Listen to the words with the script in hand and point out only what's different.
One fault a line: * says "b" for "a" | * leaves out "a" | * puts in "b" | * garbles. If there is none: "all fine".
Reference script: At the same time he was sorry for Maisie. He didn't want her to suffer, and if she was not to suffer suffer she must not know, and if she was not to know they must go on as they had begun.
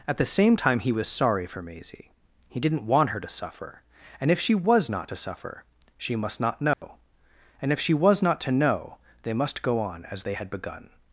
* leaves out "suffer"